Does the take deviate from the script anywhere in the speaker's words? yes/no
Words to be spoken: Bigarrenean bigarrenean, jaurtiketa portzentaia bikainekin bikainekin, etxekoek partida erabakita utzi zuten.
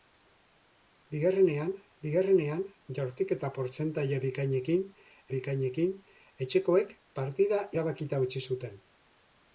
no